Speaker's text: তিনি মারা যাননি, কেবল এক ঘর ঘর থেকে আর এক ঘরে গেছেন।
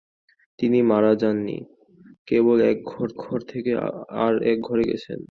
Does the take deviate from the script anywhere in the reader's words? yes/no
no